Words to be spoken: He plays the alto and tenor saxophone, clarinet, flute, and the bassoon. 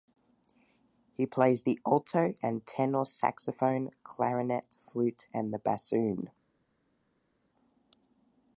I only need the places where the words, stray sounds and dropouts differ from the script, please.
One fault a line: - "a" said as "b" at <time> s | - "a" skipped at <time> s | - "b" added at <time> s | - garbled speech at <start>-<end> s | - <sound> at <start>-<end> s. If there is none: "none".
none